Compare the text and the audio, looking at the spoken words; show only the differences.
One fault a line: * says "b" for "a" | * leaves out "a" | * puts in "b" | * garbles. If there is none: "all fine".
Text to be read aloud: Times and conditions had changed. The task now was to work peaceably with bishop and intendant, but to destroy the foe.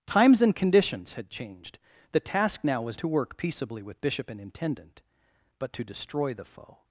all fine